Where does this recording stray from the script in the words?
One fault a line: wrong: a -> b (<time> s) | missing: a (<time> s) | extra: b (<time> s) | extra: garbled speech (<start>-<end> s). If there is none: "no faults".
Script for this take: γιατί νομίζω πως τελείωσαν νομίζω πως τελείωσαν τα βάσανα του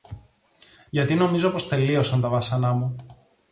missing: νομίζω πως τελείωσαν (2.2 s)
wrong: του -> μου (2.7 s)